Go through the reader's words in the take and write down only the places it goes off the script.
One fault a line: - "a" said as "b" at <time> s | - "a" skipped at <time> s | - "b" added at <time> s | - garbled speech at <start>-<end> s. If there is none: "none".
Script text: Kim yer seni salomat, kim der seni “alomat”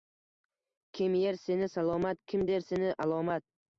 none